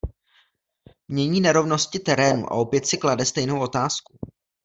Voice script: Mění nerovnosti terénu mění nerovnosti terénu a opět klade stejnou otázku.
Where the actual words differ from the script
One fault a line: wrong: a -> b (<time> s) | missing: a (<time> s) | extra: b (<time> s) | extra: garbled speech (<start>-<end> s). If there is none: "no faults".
missing: mění nerovnosti terénu (2.5 s)
extra: si (2.9 s)